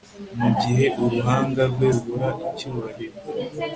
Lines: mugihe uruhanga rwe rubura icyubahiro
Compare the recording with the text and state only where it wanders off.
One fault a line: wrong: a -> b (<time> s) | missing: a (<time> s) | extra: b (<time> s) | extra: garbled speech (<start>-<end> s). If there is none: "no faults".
no faults